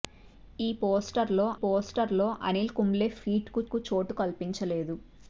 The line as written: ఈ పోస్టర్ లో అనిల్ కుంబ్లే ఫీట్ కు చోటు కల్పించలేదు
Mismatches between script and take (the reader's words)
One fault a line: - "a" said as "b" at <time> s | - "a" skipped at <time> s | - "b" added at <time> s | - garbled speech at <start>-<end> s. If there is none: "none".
- "పోస్టర్ లో" added at 1.6 s
- "కు" added at 3.7 s